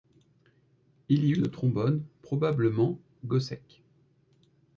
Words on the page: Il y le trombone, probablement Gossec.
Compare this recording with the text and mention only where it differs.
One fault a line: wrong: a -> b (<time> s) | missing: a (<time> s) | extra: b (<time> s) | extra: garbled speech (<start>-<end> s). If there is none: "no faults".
no faults